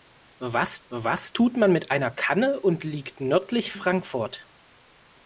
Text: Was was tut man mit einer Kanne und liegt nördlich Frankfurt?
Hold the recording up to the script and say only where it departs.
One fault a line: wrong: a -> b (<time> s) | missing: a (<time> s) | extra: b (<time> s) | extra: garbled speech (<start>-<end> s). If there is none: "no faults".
no faults